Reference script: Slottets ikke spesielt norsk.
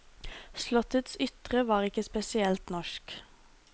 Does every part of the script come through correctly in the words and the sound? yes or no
no